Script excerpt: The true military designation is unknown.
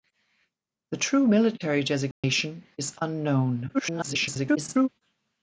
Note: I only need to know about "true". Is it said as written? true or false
true